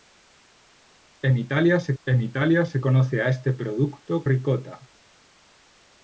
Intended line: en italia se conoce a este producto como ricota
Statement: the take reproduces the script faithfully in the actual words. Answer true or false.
false